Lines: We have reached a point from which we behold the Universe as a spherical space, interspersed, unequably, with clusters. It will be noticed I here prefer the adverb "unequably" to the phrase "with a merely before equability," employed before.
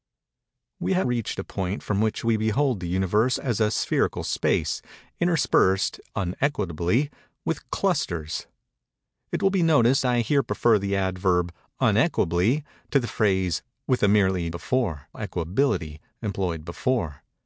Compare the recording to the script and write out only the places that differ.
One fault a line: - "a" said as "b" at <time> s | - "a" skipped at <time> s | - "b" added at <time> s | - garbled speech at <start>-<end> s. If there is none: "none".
none